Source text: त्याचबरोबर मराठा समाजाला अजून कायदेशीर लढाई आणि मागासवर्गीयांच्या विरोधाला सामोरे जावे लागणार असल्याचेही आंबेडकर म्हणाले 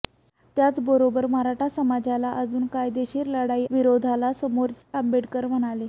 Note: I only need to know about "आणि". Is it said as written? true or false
false